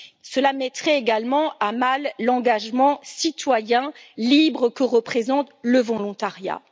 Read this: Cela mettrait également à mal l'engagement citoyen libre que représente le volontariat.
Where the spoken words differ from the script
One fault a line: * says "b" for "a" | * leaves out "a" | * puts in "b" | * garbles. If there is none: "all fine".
all fine